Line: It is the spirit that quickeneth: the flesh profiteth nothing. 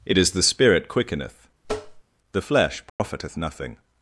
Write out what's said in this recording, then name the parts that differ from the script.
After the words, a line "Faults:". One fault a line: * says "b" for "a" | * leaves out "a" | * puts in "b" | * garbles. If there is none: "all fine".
It is the spirit quickeneth: the flesh profiteth nothing.
Faults:
* leaves out "that"